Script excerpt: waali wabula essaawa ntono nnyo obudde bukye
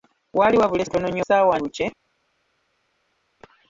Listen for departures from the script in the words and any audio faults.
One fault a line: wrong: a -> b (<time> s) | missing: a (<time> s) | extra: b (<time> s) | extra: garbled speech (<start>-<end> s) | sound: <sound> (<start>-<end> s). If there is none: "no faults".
missing: essaawa (0.8 s)
wrong: obudde -> essaawa (1.2 s)